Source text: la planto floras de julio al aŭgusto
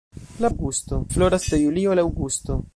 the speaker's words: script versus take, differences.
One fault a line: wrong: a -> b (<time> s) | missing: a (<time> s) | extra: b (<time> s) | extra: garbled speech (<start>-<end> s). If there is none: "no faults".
wrong: planto -> aŭgusto (0.5 s)